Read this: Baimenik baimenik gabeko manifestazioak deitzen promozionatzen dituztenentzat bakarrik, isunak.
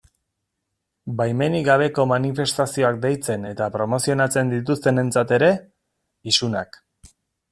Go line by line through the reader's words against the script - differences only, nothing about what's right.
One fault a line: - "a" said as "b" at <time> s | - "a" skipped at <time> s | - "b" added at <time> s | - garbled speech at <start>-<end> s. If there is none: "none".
- "baimenik" skipped at 1.7 s
- "eta" added at 3.5 s
- "bakarrik" said as "ere" at 5.4 s